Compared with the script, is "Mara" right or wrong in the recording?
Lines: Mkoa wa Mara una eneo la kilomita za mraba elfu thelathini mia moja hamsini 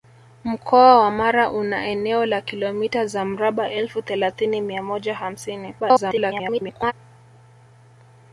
right